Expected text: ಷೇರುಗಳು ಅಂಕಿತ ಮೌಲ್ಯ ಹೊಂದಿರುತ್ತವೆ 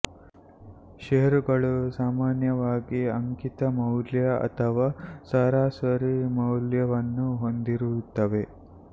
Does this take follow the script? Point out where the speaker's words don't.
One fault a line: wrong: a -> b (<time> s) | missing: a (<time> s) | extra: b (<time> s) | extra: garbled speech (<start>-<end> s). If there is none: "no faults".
extra: ಸಾಮಾನ್ಯವಾಗಿ (1.9 s)
extra: ಅಥವಾ ಸರಾಸರಿ ಮೌಲ್ಯವನ್ನು (4.5 s)